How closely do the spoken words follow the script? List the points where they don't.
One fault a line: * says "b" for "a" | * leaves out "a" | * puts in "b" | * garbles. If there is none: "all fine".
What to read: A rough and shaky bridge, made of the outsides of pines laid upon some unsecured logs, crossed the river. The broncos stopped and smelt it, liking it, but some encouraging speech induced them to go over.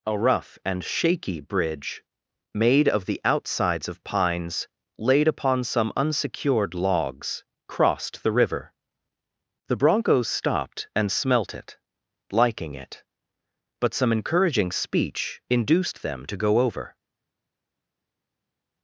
all fine